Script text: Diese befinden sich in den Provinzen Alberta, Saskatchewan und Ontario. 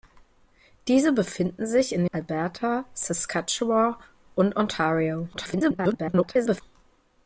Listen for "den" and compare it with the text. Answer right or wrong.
wrong